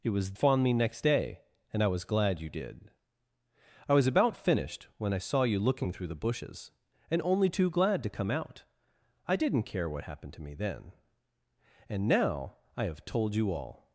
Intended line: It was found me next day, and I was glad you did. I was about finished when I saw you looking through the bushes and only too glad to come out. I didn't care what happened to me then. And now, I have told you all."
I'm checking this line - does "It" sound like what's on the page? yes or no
yes